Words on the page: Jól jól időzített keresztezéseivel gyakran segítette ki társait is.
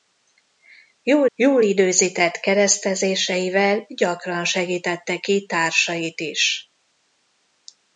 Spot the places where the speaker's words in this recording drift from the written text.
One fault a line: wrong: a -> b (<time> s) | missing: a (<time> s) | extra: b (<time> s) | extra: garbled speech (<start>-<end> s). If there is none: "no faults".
no faults